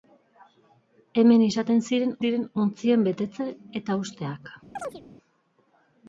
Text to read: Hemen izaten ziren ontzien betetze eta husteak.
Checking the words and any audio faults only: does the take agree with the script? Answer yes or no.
no